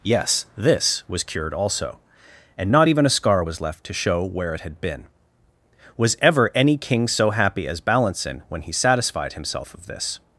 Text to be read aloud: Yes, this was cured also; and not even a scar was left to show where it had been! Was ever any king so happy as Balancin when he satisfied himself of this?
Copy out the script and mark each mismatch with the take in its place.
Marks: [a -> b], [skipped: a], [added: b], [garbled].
Yes, this was cured also; and not even a scar was left to show where it had been! Was ever any king so happy as Balancin when he satisfied himself of this?